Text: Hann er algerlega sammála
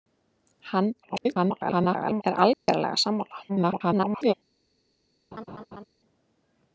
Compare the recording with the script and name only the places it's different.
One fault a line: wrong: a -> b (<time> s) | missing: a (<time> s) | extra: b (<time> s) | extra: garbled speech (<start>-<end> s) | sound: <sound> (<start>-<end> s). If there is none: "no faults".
extra: garbled speech (1.0-2.2 s)
sound: dropout (2.5-2.7 s)
extra: garbled speech (3.5-4.3 s)
sound: laugh (5.3-5.8 s)